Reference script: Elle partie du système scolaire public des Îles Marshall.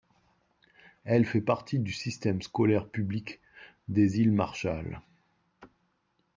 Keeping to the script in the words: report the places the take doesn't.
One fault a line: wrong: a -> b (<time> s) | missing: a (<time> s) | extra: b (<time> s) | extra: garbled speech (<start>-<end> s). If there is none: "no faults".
extra: fait (1.2 s)